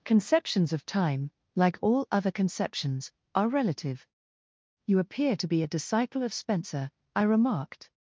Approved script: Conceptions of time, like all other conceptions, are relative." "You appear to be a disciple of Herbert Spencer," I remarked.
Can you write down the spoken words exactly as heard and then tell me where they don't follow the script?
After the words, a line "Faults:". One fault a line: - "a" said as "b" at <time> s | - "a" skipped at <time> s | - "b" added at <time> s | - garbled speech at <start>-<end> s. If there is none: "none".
Conceptions of time, like all other conceptions, are relative." "You appear to be a disciple of Spencer," I remarked.
Faults:
- "Herbert" skipped at 6.3 s